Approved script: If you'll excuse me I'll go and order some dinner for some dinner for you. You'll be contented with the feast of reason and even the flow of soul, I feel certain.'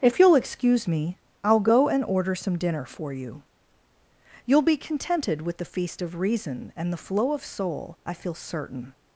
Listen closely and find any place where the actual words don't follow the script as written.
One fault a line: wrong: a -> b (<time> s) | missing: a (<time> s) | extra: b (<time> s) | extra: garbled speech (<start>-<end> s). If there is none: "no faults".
missing: some dinner for (3.1 s)
missing: even (6.9 s)